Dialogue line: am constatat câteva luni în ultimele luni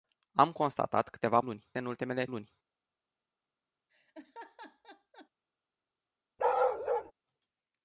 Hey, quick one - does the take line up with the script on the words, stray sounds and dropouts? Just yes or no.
no